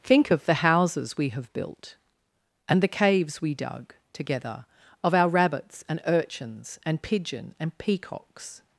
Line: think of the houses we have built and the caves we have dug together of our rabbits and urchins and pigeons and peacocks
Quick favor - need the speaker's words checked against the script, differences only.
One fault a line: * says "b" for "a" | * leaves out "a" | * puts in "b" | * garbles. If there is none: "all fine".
* leaves out "have"
* says "pigeon" for "pigeons"